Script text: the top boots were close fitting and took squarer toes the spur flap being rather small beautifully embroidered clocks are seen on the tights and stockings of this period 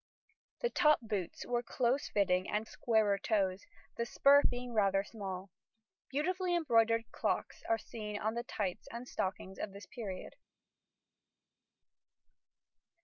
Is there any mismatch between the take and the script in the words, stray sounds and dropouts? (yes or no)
yes